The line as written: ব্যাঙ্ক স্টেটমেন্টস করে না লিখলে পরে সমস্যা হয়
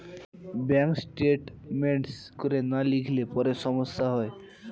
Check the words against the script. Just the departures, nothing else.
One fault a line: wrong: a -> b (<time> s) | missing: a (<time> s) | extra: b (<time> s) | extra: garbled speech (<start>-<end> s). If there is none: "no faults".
no faults